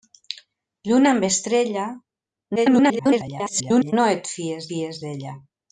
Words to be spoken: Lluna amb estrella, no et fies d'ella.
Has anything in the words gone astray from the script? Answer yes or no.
yes